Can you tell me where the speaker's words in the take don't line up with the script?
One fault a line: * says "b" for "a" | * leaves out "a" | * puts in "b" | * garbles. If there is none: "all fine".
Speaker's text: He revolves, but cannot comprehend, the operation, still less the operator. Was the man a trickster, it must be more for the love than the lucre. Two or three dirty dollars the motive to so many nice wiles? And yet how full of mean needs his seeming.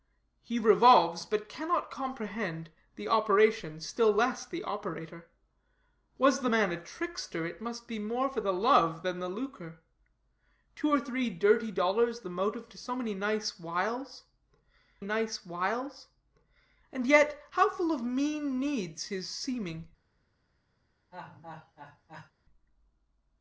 * puts in "nice wiles"